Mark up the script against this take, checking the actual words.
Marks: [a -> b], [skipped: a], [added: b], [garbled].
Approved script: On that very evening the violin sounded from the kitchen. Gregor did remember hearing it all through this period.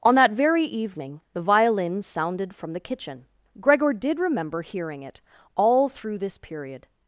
On that very evening the violin sounded from the kitchen. Gregor did remember hearing it all through this period.